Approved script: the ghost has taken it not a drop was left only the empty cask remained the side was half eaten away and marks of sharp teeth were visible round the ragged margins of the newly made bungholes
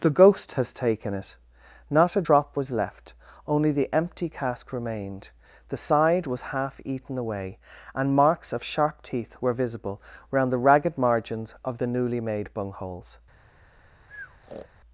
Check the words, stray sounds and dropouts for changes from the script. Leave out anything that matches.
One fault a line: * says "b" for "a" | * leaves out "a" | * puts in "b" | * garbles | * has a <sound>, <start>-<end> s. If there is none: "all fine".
* has a breath, 14.1-14.7 s